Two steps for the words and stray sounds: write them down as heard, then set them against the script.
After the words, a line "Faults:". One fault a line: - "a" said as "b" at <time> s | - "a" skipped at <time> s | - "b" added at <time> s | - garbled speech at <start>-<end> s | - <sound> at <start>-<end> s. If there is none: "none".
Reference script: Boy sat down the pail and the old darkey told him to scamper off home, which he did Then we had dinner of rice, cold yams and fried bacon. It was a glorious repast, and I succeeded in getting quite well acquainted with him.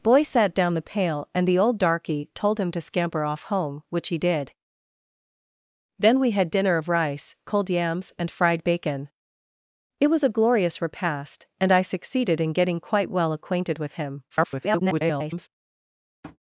Boy sat down the pail and the old darkey told him to scamper off home, which he did Then we had dinner of rice, cold yams and fried bacon. It was a glorious repast, and I succeeded in getting quite well acquainted with him. [garbled]
Faults:
- garbled speech at 14.3-15.5 s
- tap at 16.2-16.4 s